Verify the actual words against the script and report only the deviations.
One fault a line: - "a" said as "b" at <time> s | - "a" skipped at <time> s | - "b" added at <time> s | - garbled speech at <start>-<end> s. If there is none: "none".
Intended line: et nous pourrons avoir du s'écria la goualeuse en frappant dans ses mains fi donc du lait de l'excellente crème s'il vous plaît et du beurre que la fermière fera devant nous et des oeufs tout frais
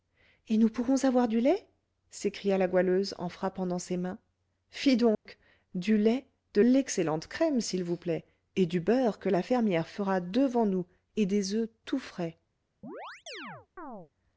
- "lait" added at 1.4 s